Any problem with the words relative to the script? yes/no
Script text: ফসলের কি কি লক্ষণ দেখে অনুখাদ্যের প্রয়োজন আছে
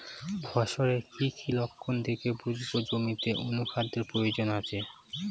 yes